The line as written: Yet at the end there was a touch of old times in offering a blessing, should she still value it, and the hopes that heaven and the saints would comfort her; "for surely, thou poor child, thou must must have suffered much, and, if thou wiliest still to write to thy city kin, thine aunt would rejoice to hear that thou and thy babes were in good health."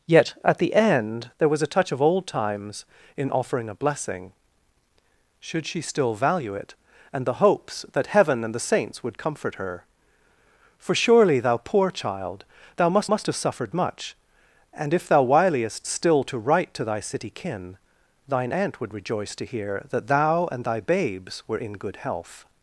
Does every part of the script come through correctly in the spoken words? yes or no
yes